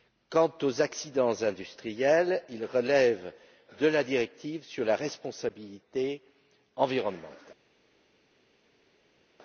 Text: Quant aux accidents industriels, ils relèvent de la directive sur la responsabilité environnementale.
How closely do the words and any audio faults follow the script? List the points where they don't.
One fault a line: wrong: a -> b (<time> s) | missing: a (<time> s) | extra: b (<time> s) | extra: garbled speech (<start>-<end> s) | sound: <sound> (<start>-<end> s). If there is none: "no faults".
no faults